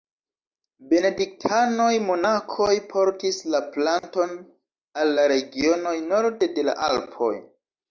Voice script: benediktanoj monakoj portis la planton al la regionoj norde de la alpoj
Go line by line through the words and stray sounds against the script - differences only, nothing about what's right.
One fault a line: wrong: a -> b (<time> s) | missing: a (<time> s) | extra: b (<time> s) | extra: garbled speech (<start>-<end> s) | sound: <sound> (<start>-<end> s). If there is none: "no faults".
sound: dropout (4.0-4.0 s)